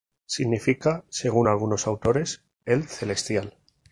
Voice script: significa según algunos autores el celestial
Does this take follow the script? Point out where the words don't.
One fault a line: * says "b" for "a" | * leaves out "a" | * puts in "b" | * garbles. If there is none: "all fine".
all fine